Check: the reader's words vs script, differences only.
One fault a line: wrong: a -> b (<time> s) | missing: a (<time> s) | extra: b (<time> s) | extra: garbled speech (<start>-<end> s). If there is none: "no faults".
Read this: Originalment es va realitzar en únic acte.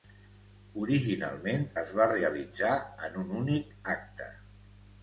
extra: un (3.3 s)